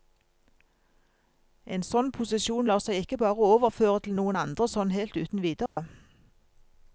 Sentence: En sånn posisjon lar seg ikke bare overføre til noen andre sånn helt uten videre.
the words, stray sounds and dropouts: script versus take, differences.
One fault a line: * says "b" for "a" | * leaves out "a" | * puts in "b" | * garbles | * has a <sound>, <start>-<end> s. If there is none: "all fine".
* has a dropout, 5.7-5.8 s